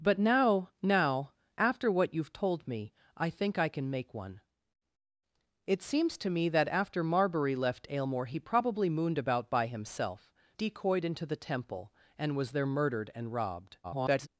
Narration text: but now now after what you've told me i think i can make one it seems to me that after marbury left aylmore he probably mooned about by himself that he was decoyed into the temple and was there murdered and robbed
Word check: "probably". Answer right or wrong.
right